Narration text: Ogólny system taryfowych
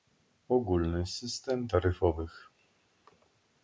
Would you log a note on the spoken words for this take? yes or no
no